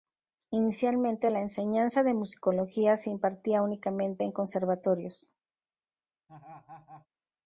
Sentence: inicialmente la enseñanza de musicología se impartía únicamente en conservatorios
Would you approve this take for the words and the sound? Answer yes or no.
no